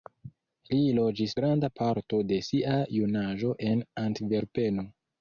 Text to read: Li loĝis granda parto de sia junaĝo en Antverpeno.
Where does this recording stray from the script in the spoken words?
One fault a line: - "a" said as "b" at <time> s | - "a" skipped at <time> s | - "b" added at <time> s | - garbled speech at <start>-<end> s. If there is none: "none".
none